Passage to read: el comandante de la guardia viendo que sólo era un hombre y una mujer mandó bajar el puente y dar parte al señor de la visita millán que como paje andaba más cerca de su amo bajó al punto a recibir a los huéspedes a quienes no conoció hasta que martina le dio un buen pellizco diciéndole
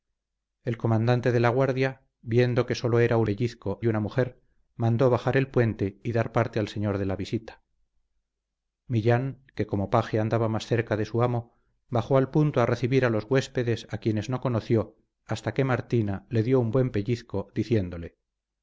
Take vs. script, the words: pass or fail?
fail